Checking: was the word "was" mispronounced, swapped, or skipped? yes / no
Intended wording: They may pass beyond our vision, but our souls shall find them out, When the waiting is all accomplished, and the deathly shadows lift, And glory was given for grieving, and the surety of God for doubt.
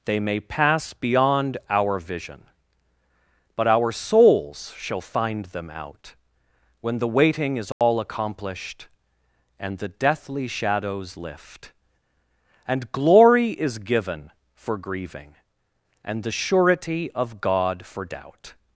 yes